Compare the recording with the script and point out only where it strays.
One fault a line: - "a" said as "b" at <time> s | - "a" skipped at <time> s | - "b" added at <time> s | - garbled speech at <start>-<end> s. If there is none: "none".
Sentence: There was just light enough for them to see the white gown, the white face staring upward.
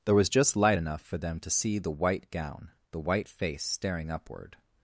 none